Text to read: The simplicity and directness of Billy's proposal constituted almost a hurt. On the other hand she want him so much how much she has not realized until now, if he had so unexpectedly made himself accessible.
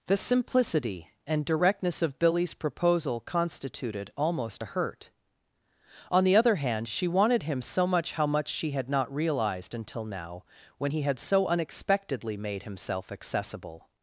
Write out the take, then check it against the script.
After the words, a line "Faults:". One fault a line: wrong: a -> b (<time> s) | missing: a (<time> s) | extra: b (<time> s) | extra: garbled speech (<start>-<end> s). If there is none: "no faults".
The simplicity and directness of Billy's proposal constituted almost a hurt. On the other hand she wanted him so much how much she had not realized until now, when he had so unexpectedly made himself accessible.
Faults:
wrong: want -> wanted (7.1 s)
wrong: has -> had (8.7 s)
wrong: if -> when (10.8 s)